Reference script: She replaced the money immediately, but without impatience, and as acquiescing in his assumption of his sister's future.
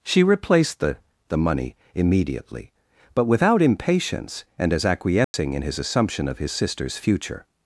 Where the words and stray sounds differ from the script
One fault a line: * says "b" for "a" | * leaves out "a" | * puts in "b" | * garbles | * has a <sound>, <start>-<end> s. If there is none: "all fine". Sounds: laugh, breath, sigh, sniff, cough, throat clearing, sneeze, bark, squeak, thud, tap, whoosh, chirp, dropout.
* puts in "the"
* has a dropout, 5.2-5.3 s